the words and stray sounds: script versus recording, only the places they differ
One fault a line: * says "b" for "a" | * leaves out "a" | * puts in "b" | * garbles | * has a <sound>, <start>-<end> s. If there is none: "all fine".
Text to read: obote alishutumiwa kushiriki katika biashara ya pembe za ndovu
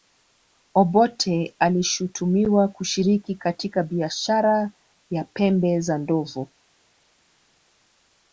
all fine